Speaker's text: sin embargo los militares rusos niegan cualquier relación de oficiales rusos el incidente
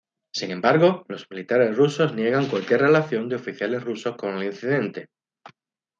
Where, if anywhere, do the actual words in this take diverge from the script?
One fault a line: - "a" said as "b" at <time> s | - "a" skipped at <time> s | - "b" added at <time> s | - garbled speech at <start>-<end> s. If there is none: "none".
- "con" added at 4.2 s